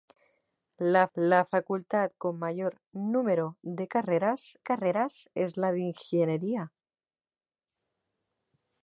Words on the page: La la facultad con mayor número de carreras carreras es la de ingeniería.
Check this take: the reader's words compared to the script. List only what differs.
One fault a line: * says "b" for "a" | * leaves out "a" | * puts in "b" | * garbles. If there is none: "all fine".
all fine